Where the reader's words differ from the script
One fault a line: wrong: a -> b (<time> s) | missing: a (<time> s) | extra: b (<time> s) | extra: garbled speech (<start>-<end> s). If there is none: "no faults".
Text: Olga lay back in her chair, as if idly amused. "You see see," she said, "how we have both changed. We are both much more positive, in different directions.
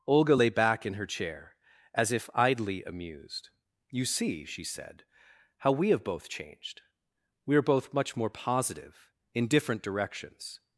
missing: see (4.4 s)